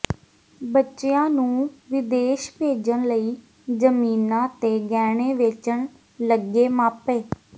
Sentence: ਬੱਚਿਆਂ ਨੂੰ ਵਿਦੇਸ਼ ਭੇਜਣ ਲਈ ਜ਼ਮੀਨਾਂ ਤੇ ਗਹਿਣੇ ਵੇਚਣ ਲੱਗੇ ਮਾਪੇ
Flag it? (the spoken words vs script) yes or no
no